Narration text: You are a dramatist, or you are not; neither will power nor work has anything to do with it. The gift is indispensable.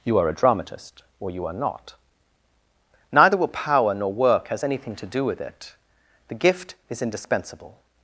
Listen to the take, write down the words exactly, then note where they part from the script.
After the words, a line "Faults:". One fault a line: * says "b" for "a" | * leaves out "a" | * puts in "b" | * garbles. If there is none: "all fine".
You are a dramatist, or you are not; neither will power nor work has anything to do with it. The gift is indispensable.
Faults:
all fine